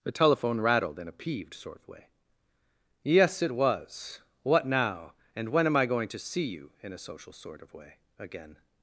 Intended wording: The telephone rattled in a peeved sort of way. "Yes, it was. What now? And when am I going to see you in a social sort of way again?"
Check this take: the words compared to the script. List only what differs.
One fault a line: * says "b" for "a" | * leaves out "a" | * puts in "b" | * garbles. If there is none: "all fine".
all fine